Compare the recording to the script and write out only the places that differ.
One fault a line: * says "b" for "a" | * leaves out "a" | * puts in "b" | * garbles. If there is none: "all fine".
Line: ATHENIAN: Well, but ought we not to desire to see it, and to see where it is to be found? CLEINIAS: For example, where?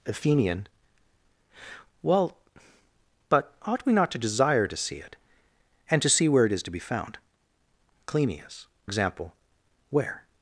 * leaves out "For"